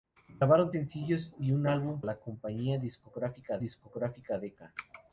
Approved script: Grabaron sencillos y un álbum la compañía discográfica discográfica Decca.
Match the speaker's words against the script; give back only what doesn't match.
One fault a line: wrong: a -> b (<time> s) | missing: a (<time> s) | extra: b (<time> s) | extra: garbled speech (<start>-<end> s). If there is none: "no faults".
no faults